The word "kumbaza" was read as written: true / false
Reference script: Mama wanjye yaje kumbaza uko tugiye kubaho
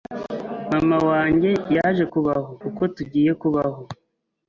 false